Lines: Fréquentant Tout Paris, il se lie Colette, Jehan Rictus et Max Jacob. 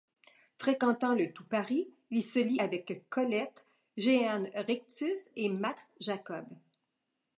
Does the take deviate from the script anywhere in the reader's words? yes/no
yes